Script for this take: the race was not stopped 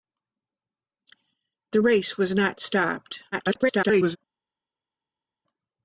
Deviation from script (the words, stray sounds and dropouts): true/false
true